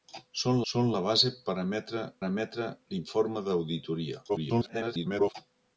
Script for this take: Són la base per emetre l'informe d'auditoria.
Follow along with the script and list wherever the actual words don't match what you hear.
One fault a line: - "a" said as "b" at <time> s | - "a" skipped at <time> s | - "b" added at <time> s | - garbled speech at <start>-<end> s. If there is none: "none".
- "són" added at 0.7 s
- "emetre" added at 2.3 s
- garbled speech at 4.3-5.3 s